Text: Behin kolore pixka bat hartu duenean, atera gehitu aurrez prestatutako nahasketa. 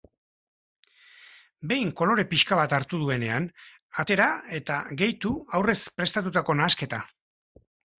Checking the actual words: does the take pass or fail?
fail